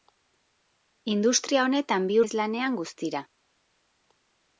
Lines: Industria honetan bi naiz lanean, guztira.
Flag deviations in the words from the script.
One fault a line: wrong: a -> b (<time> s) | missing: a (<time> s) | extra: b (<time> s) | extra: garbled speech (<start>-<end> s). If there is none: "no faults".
no faults